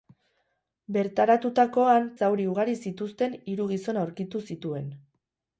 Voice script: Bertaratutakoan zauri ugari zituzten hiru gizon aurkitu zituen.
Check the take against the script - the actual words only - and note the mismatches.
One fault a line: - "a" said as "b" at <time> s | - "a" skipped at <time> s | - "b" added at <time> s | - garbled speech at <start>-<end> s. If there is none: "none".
none